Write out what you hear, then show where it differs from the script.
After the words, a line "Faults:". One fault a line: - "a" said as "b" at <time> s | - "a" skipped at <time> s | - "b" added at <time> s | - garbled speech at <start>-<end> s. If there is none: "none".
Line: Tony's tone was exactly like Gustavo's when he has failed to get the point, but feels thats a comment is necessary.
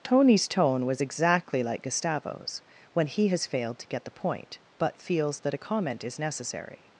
Tony's tone was exactly like Gustavo's when he has failed to get the point, but feels that a comment is necessary.
Faults:
- "thats" said as "that" at 5.4 s